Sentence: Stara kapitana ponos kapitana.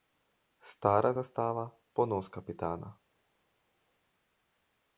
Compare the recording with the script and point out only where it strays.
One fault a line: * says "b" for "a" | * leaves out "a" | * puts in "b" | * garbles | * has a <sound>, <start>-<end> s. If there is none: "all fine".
* says "zastava" for "kapitana"